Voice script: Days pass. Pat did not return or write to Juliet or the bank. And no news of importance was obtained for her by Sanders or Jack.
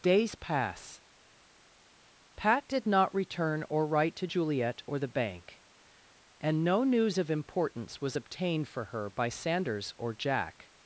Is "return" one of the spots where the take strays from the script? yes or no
no